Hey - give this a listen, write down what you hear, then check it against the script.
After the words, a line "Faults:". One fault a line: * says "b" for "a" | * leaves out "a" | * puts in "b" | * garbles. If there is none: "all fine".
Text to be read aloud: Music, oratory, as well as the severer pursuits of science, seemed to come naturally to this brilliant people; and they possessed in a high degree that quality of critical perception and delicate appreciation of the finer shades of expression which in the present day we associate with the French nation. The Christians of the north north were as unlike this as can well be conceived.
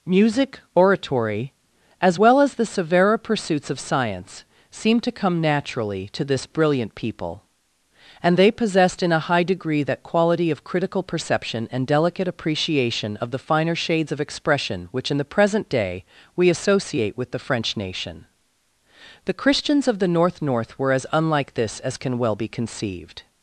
Music, oratory, as well as the severer pursuits of science, seemed to come naturally to this brilliant people; and they possessed in a high degree that quality of critical perception and delicate appreciation of the finer shades of expression which in the present day we associate with the French nation. The Christians of the north north were as unlike this as can well be conceived.
Faults:
all fine